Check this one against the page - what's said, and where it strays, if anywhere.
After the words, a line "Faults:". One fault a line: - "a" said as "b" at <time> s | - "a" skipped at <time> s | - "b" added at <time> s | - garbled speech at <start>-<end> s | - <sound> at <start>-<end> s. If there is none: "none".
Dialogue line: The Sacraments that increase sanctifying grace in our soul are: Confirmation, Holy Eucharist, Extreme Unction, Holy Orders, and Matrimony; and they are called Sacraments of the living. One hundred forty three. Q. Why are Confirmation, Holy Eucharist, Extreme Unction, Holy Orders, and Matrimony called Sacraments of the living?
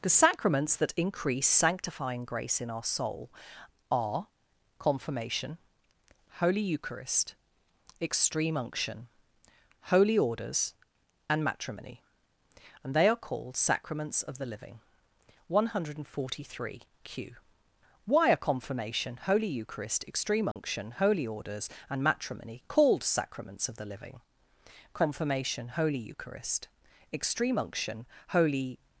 The Sacraments that increase sanctifying grace in our soul are: Confirmation, Holy Eucharist, Extreme Unction, Holy Orders, and Matrimony; and they are called Sacraments of the living. One hundred forty three. Q. Why are Confirmation, Holy Eucharist, Extreme Unction, Holy Orders, and Matrimony called Sacraments of the living? Confirmation, Holy Eucharist, Extreme Unction, Holy
Faults:
- dropout at 20.5-20.6 s
- "Confirmation Holy Eucharist Extreme Unction Holy" added at 24.9 s